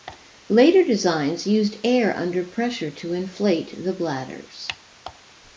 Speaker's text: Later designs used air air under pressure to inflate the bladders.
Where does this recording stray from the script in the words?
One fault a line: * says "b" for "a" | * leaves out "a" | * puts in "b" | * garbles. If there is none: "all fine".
* leaves out "air"